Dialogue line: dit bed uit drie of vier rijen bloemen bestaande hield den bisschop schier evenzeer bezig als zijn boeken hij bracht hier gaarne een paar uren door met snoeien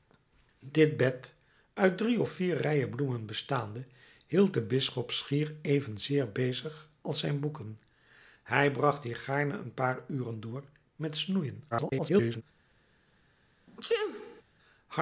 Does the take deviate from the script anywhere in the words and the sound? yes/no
yes